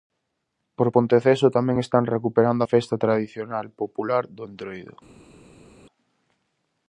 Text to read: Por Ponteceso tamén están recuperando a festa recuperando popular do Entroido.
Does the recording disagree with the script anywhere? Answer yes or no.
yes